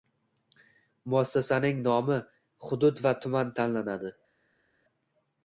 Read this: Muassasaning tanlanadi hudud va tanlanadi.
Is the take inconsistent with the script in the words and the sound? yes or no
yes